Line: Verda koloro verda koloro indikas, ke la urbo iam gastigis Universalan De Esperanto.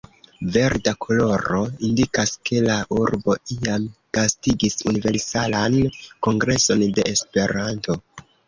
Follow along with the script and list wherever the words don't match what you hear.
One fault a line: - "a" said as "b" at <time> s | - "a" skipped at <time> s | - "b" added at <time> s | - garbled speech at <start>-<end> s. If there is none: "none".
- "verda koloro" skipped at 1.6 s
- "Kongreson" added at 6.3 s